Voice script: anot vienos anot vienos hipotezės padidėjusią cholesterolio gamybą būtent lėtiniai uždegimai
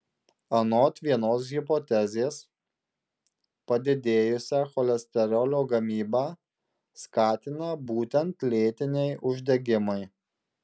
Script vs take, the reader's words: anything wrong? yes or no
yes